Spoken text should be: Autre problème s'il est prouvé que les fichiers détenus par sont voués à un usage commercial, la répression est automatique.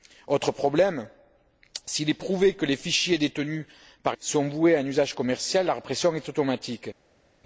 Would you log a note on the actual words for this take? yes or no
no